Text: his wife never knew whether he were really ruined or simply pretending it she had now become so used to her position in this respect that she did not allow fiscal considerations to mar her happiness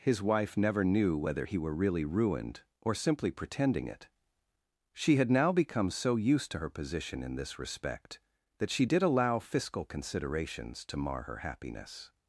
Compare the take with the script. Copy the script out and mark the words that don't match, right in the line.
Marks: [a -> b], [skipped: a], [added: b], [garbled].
his wife never knew whether he were really ruined or simply pretending it she had now become so used to her position in this respect that she did [skipped: not] allow fiscal considerations to mar her happiness